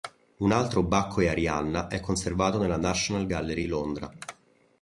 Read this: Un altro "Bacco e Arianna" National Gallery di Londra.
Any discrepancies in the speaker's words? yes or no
yes